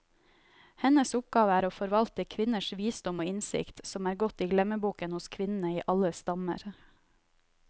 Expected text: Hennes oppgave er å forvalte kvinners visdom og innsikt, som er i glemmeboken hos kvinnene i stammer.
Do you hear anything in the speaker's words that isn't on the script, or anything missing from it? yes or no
yes